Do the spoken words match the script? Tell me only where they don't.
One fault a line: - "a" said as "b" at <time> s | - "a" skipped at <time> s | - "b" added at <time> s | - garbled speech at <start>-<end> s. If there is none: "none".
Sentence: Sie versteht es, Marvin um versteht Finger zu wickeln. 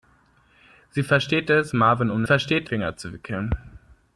none